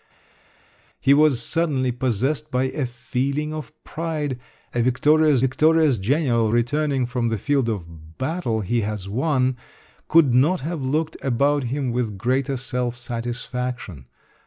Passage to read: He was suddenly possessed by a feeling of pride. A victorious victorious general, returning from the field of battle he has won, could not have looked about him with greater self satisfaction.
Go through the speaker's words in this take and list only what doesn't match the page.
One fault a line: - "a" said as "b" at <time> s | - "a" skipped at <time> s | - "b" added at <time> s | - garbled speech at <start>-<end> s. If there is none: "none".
none